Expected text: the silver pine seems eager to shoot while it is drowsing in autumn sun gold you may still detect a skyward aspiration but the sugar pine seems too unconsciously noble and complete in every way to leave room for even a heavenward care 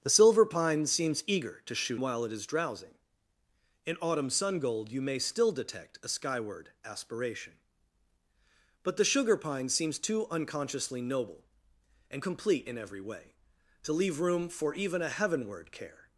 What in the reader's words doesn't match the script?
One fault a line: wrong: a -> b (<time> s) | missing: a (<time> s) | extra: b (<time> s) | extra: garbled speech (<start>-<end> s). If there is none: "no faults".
no faults